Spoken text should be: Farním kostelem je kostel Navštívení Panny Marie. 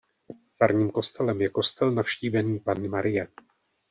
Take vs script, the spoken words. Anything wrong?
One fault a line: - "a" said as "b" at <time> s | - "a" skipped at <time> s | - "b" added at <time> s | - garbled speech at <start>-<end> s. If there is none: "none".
none